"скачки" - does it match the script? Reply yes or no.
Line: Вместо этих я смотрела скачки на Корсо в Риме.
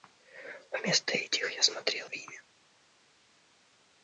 no